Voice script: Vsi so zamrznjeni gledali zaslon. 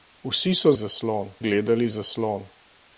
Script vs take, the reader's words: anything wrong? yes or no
yes